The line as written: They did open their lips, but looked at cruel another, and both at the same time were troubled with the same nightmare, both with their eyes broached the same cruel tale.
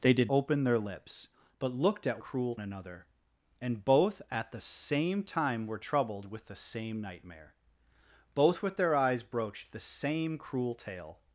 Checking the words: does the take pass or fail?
pass